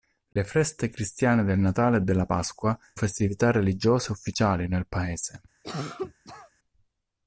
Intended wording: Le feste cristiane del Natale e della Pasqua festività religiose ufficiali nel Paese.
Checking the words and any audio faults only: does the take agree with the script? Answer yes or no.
no